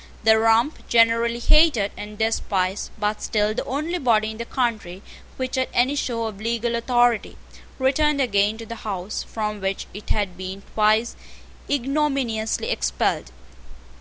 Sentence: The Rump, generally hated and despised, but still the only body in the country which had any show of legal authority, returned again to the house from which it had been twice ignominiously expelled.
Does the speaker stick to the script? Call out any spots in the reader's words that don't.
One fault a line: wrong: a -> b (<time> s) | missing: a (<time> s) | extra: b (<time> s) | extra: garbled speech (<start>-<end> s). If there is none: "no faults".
no faults